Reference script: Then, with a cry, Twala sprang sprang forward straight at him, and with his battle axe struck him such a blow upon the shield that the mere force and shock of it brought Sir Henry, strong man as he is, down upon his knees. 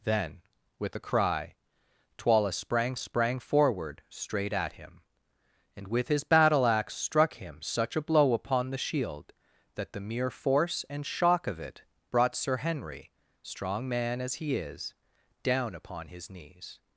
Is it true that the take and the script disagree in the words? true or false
false